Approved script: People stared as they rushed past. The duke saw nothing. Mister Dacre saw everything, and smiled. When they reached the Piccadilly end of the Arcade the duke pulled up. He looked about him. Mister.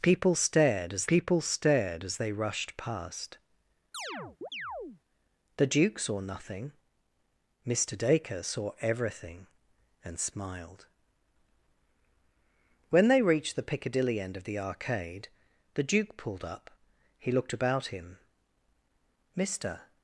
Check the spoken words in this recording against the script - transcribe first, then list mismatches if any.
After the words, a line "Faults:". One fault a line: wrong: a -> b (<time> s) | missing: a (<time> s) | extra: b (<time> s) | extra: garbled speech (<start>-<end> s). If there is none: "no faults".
People stared as people stared as they rushed past. The duke saw nothing. Mister Dacre saw everything, and smiled. When they reached the Piccadilly end of the Arcade the duke pulled up. He looked about him. Mister.
Faults:
extra: people stared as (1.1 s)